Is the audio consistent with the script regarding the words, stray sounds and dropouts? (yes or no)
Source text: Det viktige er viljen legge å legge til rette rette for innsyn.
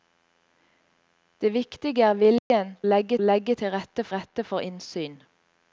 no